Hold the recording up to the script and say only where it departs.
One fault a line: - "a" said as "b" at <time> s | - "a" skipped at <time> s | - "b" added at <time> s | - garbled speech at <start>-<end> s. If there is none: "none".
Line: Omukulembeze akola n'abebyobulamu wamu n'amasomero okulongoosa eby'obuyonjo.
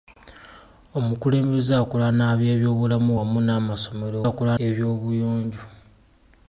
- "okulongoosa" said as "akola" at 4.3 s